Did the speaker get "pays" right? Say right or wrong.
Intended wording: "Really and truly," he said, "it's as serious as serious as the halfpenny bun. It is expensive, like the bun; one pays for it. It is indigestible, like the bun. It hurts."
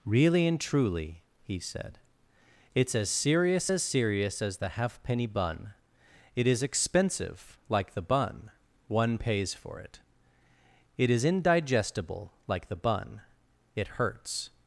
right